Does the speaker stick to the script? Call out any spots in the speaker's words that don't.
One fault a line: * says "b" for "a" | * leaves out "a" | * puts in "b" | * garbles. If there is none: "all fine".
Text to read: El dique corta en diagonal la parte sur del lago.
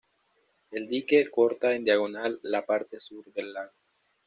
all fine